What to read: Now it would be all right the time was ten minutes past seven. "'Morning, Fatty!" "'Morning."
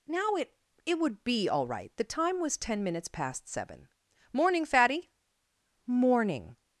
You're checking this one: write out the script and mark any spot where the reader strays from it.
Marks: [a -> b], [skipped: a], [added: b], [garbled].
Now it [added: it] would be all right the time was ten minutes past seven. "'Morning, Fatty!" "'Morning."